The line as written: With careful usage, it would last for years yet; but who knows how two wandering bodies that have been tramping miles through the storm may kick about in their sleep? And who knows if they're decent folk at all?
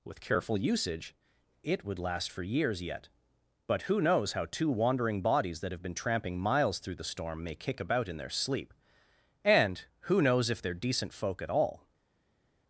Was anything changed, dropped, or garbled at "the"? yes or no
no